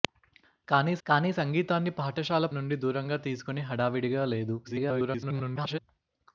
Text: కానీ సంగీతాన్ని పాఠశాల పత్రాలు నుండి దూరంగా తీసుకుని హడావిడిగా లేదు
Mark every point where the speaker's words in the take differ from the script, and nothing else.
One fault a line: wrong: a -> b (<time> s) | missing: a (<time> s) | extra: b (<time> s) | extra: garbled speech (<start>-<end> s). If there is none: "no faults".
extra: కానీ (1.1 s)
missing: పత్రాలు (2.5 s)
extra: garbled speech (4.6-5.8 s)